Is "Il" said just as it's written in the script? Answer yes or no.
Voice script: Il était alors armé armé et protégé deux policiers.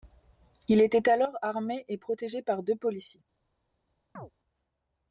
yes